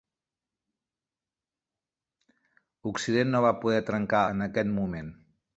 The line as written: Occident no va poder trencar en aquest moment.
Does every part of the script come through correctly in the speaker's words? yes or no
yes